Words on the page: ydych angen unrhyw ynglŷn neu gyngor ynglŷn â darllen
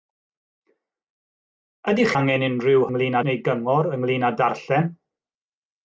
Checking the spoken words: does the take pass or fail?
pass